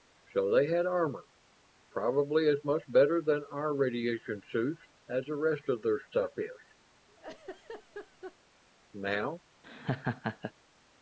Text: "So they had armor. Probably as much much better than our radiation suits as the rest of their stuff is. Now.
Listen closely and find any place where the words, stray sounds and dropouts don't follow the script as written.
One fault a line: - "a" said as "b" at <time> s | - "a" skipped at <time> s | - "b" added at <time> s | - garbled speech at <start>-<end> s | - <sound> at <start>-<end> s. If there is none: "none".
- "much" skipped at 2.8 s
- laugh at 7.1-8.4 s
- laugh at 9.6-10.5 s